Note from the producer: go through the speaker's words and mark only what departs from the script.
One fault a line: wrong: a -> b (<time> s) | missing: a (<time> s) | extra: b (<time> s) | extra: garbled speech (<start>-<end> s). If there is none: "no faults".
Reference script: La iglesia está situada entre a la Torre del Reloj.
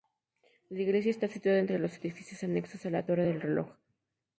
extra: los edificios anexos (1.8 s)